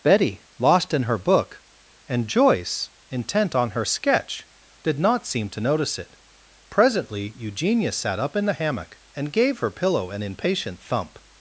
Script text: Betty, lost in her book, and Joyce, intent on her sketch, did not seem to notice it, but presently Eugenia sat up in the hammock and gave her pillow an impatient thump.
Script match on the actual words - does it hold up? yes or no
no